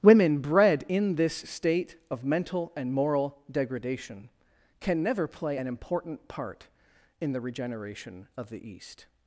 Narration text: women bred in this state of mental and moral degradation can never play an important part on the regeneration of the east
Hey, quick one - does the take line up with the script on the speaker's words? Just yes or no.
no